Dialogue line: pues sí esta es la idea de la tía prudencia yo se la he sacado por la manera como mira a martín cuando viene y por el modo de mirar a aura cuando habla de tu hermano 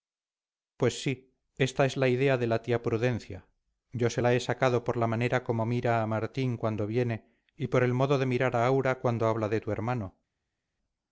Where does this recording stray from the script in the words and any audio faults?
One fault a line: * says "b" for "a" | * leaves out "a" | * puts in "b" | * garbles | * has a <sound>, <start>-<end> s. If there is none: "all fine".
all fine